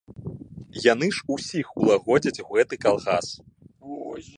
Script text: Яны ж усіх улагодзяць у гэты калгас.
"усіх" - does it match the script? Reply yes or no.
yes